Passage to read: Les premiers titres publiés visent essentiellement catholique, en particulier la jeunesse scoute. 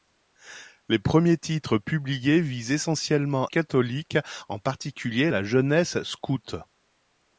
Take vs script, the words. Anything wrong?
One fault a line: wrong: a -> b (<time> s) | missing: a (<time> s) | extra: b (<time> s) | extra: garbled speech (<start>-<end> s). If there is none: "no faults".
no faults